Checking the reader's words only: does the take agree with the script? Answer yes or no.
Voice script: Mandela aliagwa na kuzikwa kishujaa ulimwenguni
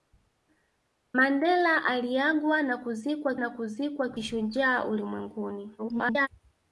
no